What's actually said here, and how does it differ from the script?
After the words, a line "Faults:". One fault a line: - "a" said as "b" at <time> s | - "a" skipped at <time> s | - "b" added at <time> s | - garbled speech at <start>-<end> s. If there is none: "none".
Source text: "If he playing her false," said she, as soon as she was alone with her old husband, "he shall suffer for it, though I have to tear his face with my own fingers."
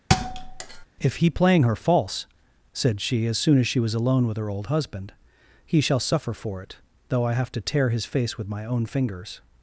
"If he playing her false," said she, as soon as she was alone with her old husband, "he shall suffer for it, though I have to tear his face with my own fingers."
Faults:
none